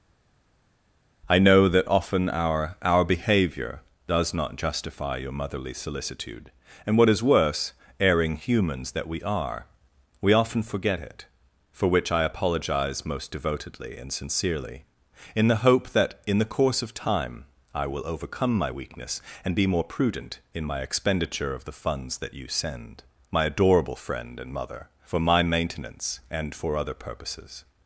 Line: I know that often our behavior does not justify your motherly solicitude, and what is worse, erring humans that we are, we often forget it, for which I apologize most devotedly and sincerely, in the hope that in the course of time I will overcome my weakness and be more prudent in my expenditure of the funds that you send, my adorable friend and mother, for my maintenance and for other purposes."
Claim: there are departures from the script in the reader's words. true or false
true